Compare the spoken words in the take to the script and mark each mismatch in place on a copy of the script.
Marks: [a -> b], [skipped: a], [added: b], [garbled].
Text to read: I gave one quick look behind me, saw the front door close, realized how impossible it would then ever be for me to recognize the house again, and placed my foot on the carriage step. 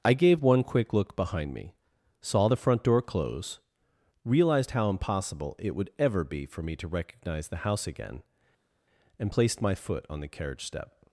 I gave one quick look behind me, saw the front door close, realized how impossible it would [skipped: then] ever be for me to recognize the house again, and placed my foot on the carriage step.